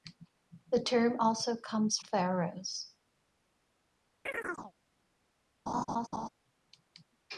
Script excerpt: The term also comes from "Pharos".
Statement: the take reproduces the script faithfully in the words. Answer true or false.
false